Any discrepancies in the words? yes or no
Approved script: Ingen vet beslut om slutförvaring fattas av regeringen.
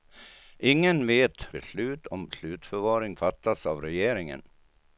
no